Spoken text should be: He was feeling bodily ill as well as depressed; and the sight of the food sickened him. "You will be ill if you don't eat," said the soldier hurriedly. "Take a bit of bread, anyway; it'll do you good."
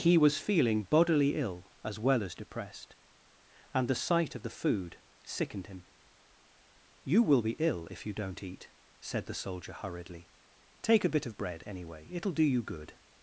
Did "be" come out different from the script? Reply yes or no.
no